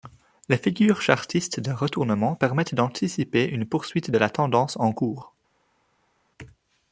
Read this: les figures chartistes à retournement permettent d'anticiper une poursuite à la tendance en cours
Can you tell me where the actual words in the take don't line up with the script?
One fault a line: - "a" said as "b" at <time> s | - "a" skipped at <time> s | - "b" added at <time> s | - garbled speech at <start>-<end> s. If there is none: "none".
- "à" said as "de" at 1.6 s
- "à" said as "de" at 4.1 s